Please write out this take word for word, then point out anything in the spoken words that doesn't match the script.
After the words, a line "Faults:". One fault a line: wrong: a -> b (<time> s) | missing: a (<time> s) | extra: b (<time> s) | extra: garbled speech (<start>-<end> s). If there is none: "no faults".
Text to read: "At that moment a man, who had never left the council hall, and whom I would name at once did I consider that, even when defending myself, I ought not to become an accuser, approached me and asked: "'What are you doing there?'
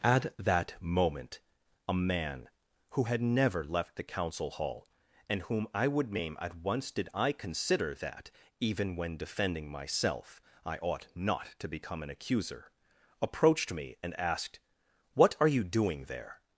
"At that moment a man, who had never left the council hall, and whom I would name at once did I consider that, even when defending myself, I ought not to become an accuser, approached me and asked: "'What are you doing there?'
Faults:
no faults